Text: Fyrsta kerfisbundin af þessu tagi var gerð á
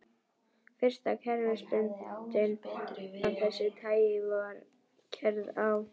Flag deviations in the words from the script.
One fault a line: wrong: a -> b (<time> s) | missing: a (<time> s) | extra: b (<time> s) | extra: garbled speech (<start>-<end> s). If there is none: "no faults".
no faults